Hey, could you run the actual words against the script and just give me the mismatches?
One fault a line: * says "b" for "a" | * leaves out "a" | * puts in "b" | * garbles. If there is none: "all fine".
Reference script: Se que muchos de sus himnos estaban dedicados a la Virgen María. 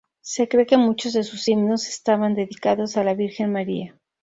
* puts in "cree"